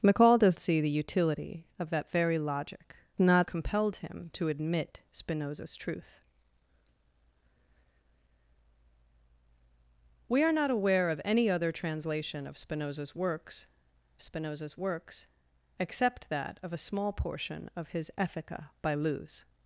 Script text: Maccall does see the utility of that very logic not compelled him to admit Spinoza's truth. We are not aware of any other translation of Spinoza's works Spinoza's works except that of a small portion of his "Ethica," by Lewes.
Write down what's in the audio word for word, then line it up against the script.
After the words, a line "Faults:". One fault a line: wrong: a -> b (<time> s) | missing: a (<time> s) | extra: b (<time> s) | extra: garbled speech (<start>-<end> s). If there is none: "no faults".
Maccall does see the utility of that very logic not compelled him to admit Spinoza's truth. We are not aware of any other translation of Spinoza's works Spinoza's works except that of a small portion of his "Ethica," by Lewes.
Faults:
no faults